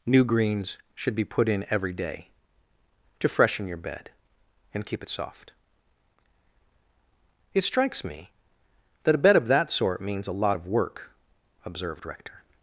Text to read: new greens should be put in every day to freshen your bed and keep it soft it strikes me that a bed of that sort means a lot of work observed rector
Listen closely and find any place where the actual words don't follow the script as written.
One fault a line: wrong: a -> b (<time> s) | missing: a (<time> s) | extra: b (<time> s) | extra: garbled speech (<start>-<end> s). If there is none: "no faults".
no faults